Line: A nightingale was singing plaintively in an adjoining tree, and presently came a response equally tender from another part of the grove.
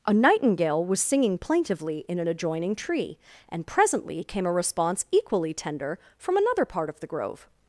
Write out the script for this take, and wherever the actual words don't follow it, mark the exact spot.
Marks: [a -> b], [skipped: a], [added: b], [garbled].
A nightingale was singing plaintively in an adjoining tree, and presently came a response equally tender from another part of the grove.